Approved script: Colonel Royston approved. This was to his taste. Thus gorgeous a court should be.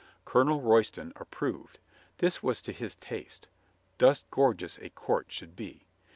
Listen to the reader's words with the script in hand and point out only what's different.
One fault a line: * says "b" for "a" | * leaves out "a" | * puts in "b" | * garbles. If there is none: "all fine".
all fine